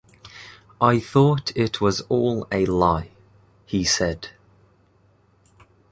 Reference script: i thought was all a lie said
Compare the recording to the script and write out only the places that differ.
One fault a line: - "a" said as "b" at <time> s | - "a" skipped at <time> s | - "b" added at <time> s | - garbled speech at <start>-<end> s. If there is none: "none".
- "it" added at 1.6 s
- "he" added at 3.7 s